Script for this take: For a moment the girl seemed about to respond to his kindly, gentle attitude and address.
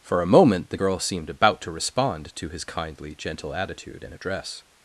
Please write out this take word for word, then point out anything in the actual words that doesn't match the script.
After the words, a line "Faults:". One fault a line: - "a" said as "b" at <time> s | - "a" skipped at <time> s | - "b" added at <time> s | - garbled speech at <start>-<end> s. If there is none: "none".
For a moment the girl seemed about to respond to his kindly, gentle attitude and address.
Faults:
none